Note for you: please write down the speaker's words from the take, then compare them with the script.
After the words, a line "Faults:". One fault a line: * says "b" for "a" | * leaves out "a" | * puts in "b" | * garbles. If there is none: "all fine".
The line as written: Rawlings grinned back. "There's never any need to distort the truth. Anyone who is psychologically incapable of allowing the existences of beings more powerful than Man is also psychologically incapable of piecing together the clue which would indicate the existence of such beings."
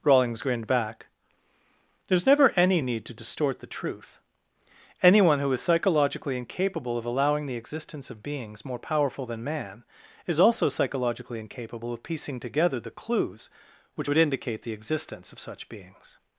Rawlings grinned back. "There's never any need to distort the truth. Anyone who is psychologically incapable of allowing the existence of beings more powerful than Man is also psychologically incapable of piecing together the clues which would indicate the existence of such beings."
Faults:
* says "existence" for "existences"
* says "clues" for "clue"